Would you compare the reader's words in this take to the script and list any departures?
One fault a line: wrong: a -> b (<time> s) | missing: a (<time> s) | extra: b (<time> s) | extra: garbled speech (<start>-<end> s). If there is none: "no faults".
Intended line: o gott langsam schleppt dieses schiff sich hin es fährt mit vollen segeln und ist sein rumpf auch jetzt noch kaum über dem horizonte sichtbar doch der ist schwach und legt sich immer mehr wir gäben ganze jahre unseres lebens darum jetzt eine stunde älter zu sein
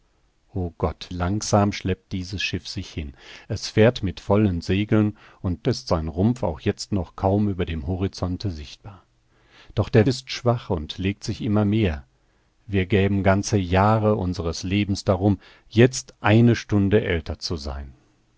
no faults